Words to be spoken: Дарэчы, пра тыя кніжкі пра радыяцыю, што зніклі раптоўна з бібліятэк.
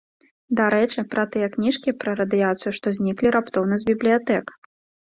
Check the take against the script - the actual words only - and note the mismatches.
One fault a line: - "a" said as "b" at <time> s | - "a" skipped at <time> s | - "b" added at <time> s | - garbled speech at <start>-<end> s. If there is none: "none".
none